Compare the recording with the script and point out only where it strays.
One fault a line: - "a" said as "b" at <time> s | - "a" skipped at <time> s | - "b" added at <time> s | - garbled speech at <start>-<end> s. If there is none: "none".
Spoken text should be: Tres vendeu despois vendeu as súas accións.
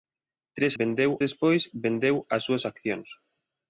none